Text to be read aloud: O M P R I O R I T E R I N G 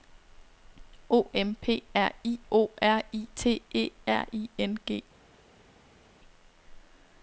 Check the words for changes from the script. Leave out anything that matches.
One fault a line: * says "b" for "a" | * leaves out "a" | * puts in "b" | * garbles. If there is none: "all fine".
all fine